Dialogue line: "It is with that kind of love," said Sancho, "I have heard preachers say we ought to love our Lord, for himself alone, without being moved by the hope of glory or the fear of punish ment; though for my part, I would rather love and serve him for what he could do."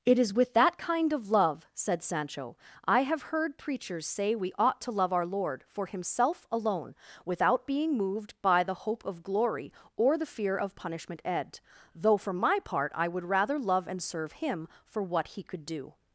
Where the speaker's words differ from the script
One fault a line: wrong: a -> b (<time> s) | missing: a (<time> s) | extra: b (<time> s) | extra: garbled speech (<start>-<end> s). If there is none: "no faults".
wrong: punish ment -> punishment ed (10.8 s)